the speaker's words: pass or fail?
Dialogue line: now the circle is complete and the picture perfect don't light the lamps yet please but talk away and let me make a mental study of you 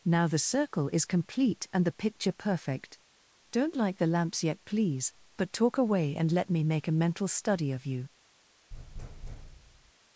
pass